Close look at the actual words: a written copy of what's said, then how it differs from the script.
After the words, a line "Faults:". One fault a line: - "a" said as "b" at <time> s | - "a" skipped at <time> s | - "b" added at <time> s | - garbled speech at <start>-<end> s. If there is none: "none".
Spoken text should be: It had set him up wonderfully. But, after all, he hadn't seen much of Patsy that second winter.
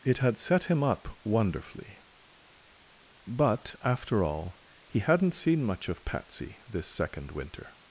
It had set him up wonderfully. But, after all, he hadn't seen much of Patsy this second winter.
Faults:
- "that" said as "this" at 6.7 s